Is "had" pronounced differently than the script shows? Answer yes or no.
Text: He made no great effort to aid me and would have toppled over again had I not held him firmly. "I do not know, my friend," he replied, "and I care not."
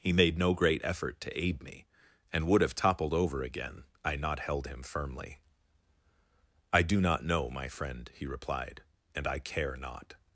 yes